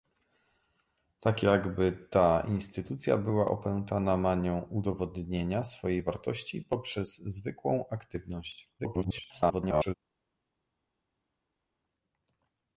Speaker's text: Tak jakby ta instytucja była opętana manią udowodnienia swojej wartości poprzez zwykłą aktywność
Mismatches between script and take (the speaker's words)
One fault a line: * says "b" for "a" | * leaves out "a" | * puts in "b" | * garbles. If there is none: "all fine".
* garbles